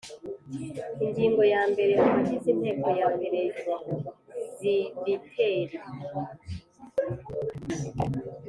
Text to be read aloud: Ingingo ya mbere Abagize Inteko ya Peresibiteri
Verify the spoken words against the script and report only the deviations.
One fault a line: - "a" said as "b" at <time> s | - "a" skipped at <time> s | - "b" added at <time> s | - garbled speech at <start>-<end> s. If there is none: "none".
none